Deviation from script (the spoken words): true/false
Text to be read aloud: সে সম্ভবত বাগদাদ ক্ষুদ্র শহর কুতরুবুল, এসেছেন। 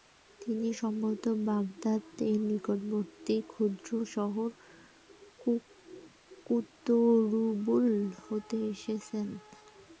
true